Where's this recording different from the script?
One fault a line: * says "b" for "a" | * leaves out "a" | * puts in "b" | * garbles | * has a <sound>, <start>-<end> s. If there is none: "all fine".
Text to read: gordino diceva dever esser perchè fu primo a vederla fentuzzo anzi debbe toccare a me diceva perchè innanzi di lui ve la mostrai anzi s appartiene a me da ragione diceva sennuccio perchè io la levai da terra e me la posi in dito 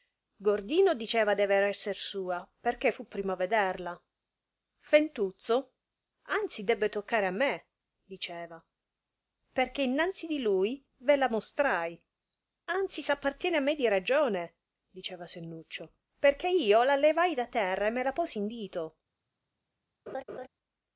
* puts in "sua"
* says "di" for "da"
* has a laugh, 20.1-20.5 s